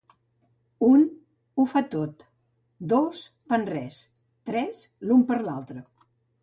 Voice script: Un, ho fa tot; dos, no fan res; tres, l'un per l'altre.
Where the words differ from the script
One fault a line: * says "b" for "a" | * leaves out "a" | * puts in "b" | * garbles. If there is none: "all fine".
* leaves out "no"